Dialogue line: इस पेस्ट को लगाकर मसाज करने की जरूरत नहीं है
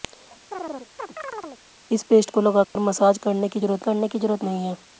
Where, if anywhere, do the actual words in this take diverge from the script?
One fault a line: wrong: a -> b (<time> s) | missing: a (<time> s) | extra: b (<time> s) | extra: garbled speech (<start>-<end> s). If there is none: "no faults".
extra: करने की जरूरत (3.8 s)